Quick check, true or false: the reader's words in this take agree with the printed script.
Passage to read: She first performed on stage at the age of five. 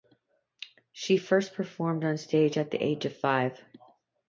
true